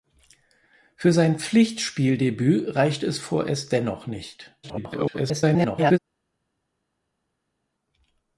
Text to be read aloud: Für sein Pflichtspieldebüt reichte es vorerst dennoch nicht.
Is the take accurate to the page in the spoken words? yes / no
no